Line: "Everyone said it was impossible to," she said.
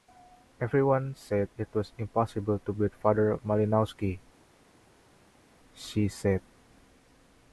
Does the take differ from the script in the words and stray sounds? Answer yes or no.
yes